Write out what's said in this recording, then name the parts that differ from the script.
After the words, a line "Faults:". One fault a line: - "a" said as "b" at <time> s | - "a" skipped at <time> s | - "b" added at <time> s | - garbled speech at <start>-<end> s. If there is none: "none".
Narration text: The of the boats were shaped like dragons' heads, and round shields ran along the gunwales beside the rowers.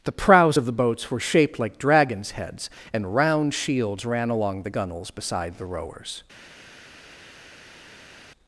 The prows of the boats were shaped like dragons' heads, and round shields ran along the gunwales beside the rowers.
Faults:
- "prows" added at 0.1 s